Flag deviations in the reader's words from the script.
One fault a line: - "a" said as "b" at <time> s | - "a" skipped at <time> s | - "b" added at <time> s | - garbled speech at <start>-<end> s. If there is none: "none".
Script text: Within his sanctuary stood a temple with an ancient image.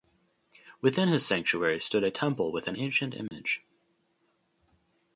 none